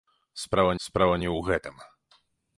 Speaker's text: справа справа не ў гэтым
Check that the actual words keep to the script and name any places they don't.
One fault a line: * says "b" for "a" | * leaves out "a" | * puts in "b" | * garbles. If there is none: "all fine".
all fine